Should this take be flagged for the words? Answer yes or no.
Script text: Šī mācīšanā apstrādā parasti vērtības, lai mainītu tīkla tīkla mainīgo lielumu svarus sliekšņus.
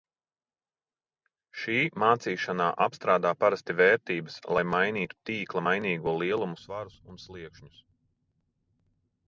yes